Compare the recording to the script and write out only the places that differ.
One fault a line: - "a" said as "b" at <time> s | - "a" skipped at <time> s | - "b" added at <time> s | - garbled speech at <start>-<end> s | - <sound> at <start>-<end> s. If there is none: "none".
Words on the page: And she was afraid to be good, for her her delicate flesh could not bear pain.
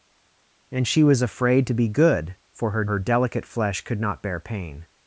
none